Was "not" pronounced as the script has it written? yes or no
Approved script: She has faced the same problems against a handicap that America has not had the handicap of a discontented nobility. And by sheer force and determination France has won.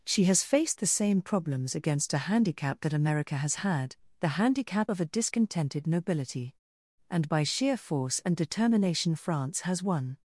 no